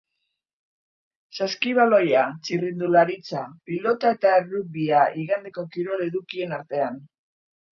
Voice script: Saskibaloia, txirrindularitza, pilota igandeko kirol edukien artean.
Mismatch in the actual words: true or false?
true